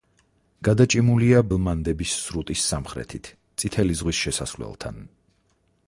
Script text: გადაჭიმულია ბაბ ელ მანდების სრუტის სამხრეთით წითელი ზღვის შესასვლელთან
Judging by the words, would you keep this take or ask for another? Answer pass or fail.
fail